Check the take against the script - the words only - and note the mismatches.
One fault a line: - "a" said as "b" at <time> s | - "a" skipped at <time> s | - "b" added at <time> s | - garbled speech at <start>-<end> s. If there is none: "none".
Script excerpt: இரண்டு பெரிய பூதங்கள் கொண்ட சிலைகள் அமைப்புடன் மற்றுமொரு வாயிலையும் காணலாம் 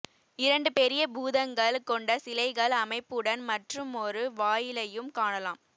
none